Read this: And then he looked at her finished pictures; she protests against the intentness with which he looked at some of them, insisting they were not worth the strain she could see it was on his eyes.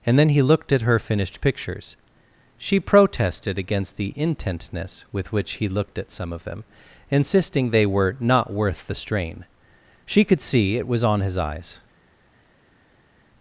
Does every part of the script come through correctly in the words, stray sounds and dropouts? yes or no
no